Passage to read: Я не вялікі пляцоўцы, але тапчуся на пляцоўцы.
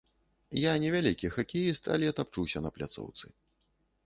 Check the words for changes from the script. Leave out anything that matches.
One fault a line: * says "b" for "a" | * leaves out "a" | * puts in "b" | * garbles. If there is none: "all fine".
* says "хакеіст" for "пляцоўцы"